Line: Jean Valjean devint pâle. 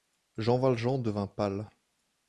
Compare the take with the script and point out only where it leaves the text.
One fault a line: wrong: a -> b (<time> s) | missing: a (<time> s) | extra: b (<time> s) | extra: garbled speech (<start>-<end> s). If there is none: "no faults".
no faults